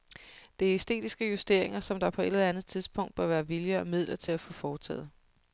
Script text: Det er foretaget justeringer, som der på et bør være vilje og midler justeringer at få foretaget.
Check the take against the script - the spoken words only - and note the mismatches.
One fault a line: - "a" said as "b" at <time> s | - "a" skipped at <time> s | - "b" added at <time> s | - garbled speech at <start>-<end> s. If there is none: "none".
- "foretaget" said as "æstetiske" at 0.8 s
- "eller andet tidspunkt" added at 2.2 s
- "justeringer" said as "til" at 4.2 s